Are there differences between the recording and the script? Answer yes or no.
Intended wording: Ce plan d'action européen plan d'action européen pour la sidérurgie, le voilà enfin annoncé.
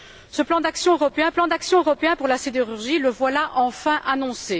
no